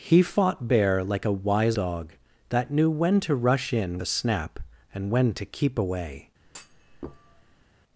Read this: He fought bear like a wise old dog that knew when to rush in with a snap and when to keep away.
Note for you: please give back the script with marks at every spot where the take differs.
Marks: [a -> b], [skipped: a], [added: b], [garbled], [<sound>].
He fought bear like a wise [skipped: old] dog that knew when to rush in [skipped: with] a snap and when to keep away. [thud]